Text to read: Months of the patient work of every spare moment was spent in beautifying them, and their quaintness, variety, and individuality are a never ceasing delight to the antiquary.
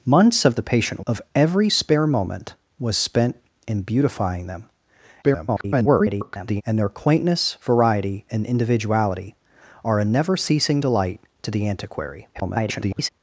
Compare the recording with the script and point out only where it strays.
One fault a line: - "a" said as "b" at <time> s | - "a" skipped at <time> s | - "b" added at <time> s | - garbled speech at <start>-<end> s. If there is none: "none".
- "work" skipped at 1.1 s
- garbled speech at 5.2-6.6 s
- garbled speech at 12.3-13.1 s